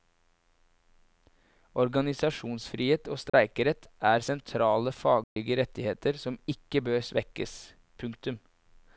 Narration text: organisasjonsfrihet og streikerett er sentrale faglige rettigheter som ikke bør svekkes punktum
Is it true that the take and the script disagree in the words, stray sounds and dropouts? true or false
true